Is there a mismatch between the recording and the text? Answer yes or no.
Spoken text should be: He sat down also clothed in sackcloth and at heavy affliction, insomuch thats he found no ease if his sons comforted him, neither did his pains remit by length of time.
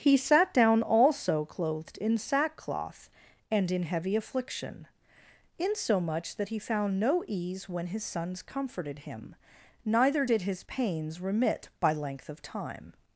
yes